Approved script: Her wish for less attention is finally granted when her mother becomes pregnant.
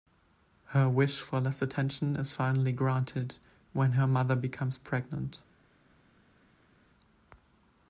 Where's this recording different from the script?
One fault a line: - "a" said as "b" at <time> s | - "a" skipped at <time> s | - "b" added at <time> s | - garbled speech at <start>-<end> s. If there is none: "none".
none